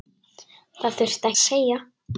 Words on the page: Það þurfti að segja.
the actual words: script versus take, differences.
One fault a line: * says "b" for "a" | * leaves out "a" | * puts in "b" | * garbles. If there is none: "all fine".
all fine